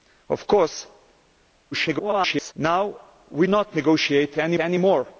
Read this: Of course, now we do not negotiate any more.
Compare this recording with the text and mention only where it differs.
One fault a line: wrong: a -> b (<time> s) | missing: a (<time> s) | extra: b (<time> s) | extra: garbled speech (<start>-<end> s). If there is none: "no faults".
extra: garbled speech (1.7-2.5 s)
missing: do (3.5 s)
extra: any (4.6 s)